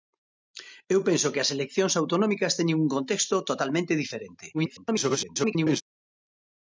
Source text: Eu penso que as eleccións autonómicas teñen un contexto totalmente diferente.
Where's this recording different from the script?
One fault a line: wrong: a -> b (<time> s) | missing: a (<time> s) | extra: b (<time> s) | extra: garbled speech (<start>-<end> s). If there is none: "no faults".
extra: garbled speech (4.5-5.8 s)